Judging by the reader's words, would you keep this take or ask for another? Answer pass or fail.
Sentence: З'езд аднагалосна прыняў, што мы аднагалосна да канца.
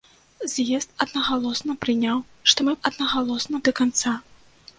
pass